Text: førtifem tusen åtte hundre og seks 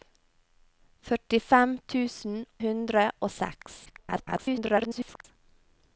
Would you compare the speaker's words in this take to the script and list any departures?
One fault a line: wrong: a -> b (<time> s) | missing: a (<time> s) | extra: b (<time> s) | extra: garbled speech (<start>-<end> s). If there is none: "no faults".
missing: åtte (2.4 s)
extra: garbled speech (3.9-5.3 s)